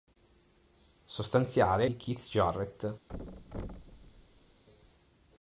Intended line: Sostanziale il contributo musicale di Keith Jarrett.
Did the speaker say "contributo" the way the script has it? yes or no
no